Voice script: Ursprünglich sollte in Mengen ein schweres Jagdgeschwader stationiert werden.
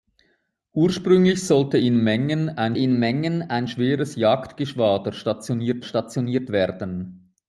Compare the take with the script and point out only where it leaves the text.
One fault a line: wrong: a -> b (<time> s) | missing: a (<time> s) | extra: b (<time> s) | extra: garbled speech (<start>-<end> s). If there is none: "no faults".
extra: in Mengen ein (2.7 s)
extra: stationiert (5.8 s)